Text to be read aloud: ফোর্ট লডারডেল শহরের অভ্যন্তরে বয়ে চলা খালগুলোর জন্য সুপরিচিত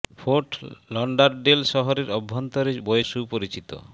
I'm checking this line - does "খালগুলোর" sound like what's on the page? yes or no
no